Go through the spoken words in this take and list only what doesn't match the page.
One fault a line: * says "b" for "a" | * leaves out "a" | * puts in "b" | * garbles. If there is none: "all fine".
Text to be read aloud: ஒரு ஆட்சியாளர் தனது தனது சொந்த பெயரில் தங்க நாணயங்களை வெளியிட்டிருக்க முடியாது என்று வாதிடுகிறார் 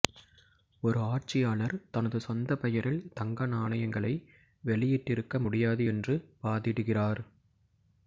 * leaves out "தனது"